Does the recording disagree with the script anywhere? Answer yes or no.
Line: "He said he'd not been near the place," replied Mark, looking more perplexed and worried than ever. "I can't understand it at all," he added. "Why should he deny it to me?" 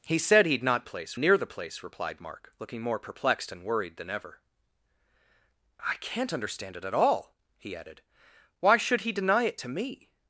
yes